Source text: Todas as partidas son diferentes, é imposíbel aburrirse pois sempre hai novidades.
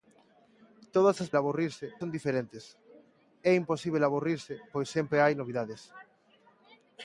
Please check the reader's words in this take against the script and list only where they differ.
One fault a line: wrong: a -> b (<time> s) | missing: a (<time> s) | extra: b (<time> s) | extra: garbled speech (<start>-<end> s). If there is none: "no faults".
wrong: partidas -> aburrirse (1.4 s)